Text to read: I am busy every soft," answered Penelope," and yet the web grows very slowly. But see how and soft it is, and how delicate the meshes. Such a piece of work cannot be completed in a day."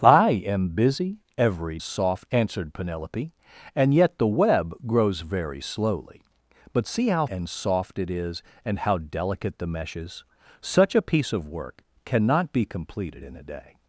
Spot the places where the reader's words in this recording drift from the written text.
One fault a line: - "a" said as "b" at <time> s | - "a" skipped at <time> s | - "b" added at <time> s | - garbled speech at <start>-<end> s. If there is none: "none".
none